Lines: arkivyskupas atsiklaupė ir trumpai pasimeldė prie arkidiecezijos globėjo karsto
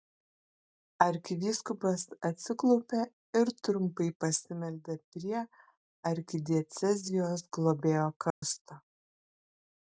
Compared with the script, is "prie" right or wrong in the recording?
right